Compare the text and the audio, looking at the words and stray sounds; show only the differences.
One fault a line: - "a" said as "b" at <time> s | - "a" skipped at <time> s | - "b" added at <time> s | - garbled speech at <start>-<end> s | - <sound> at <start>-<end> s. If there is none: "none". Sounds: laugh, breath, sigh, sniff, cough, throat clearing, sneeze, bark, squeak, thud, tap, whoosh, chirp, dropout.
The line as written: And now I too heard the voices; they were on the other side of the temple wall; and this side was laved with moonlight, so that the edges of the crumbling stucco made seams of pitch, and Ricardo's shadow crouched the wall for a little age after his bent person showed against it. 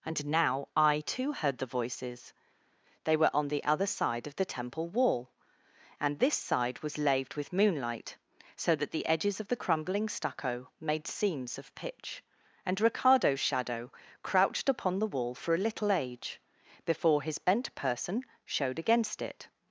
- "upon" added at 14.7 s
- "after" said as "before" at 16.9 s